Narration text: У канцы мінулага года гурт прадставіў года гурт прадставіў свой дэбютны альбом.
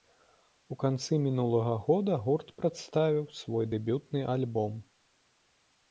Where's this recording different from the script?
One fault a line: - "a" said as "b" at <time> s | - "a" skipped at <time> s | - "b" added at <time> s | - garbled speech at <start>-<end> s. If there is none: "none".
- "года гурт прадставіў" skipped at 3.2 s